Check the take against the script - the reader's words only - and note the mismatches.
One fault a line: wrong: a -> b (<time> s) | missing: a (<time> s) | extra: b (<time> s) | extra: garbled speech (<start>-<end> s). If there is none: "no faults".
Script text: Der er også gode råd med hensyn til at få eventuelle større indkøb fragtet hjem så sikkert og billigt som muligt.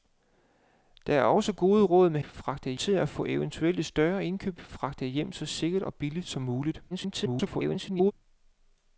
wrong: hensyn -> fragtet (2.2 s)
extra: garbled speech (6.9-8.1 s)